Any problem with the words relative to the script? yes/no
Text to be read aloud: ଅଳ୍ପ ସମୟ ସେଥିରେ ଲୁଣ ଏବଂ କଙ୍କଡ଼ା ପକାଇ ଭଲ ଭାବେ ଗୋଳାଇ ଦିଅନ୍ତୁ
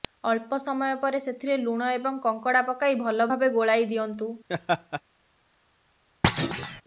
yes